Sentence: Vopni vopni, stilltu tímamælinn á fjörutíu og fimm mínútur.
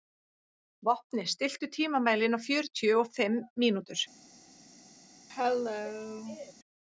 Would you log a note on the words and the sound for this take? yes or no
yes